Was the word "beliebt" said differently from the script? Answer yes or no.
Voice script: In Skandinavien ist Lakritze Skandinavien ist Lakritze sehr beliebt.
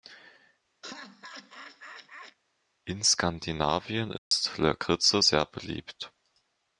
no